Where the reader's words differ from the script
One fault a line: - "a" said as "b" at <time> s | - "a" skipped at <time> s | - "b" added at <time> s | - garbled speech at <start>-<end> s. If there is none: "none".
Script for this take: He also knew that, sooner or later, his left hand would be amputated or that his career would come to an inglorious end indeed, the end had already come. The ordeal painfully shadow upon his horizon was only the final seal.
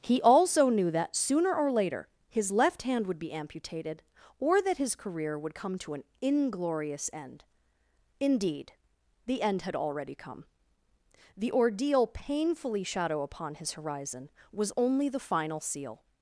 none